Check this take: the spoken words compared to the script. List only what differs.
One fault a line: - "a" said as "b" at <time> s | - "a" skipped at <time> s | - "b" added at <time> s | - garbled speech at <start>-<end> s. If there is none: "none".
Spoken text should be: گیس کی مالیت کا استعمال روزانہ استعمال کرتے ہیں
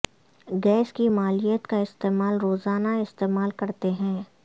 none